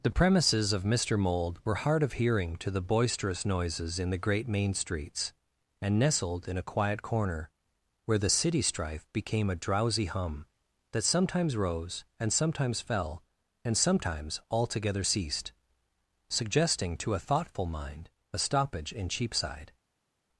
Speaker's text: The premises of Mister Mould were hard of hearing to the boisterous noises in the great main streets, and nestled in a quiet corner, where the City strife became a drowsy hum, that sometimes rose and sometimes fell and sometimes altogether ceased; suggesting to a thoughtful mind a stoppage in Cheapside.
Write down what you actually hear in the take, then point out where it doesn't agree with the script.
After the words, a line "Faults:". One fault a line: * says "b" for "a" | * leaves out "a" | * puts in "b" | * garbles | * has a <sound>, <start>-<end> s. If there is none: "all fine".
The premises of Mister Mould were hard of hearing to the boisterous noises in the great main streets, and nestled in a quiet corner, where the City strife became a drowsy hum, that sometimes rose and sometimes fell and sometimes altogether ceased; suggesting to a thoughtful mind a stoppage in Cheapside.
Faults:
all fine